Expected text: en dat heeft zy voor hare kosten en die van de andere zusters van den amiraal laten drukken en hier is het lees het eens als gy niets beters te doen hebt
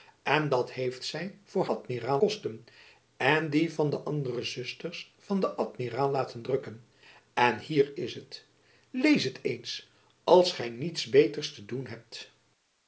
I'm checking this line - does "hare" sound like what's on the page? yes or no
no